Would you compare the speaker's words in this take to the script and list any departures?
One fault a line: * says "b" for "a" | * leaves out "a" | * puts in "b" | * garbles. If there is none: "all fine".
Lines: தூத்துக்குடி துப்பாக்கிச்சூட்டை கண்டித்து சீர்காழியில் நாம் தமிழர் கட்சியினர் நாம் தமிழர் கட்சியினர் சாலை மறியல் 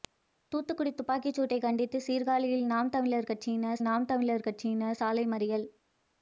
all fine